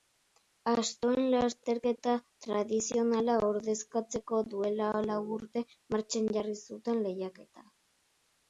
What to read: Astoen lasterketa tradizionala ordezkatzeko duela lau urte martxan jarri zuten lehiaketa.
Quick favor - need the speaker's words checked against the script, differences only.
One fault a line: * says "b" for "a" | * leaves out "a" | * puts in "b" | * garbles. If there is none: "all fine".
all fine